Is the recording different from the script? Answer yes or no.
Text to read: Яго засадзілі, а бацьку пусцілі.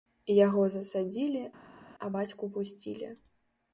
no